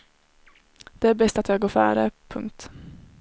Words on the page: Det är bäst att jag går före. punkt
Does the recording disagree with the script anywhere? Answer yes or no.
no